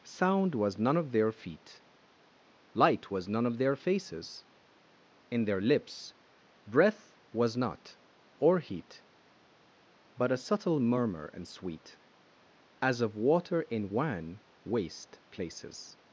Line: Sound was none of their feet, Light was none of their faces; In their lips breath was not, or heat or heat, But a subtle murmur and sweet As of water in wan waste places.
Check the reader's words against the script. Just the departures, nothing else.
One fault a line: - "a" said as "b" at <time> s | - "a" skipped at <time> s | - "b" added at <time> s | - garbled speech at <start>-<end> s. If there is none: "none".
- "or heat" skipped at 9.0 s